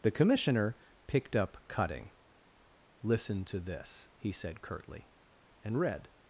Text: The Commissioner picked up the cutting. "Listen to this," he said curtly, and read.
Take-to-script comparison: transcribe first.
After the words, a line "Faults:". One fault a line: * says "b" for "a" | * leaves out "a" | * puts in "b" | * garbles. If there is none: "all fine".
The Commissioner picked up cutting. "Listen to this," he said curtly, and read.
Faults:
* leaves out "the"